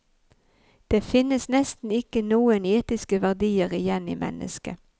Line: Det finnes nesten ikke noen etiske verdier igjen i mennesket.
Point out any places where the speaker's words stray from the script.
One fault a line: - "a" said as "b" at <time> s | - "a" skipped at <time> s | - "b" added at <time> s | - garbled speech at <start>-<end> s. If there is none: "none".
none